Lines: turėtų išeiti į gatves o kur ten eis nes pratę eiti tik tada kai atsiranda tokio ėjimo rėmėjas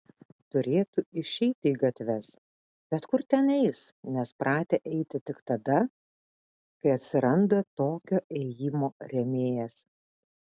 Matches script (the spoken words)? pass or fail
fail